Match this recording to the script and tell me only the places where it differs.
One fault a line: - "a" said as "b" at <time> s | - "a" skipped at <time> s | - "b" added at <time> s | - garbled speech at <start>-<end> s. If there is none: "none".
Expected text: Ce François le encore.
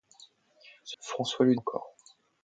none